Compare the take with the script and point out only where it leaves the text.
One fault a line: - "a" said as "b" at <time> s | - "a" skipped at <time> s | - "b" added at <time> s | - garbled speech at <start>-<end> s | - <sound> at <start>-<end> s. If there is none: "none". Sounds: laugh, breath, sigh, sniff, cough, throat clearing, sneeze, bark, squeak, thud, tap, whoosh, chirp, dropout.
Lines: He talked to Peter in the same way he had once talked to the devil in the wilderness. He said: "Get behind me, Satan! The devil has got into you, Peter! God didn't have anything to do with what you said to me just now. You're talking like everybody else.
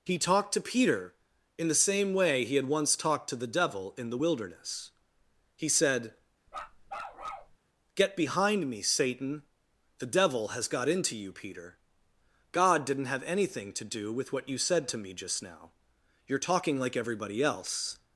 - bark at 6.5-7.6 s